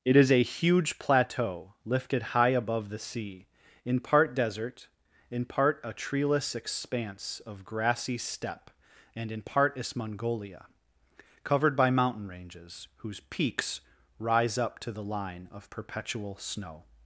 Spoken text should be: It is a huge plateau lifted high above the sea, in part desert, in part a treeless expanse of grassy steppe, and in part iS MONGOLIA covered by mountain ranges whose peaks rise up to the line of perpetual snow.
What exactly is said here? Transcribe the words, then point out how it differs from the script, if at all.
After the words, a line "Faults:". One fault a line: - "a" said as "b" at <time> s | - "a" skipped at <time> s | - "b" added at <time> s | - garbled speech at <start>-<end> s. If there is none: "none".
It is a huge plateau lifted high above the sea, in part desert, in part a treeless expanse of grassy steppe, and in part iS MONGOLIA covered by mountain ranges whose peaks rise up to the line of perpetual snow.
Faults:
none